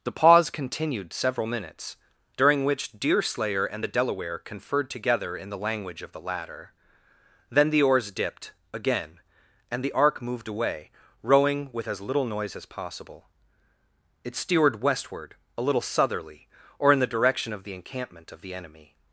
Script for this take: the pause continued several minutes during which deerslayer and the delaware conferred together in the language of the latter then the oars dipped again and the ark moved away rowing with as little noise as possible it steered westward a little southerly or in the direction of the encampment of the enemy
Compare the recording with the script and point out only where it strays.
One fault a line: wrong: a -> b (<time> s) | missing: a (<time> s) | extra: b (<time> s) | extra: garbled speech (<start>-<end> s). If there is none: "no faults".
no faults